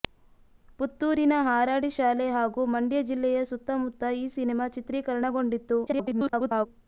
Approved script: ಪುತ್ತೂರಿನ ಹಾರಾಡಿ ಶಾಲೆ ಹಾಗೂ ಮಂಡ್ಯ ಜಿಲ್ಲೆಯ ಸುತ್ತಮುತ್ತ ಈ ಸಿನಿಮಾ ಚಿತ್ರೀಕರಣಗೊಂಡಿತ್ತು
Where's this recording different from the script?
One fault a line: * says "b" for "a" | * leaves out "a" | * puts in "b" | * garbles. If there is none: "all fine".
* garbles